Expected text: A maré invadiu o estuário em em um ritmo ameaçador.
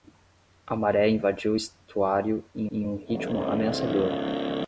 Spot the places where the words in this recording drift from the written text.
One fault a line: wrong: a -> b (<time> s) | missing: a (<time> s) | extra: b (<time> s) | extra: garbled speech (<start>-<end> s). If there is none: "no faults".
no faults